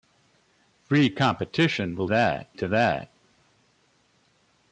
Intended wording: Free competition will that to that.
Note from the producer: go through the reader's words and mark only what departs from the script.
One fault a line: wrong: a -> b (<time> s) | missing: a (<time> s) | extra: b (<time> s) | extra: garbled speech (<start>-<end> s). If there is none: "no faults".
no faults